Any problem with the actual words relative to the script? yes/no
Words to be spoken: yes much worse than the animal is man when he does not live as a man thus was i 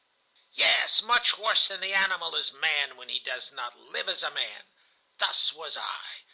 no